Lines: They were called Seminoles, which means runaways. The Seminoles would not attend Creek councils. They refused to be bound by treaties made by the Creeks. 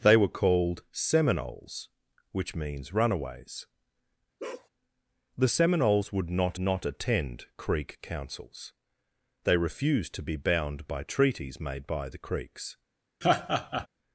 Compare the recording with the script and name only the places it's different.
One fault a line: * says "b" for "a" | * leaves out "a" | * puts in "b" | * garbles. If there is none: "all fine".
* puts in "not"